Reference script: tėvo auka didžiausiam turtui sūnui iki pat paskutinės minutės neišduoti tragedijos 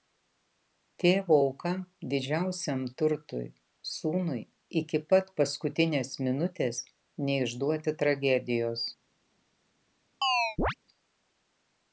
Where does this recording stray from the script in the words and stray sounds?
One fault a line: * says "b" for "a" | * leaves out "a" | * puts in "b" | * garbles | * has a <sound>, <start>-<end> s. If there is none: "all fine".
* has a chirp, 10.2-10.7 s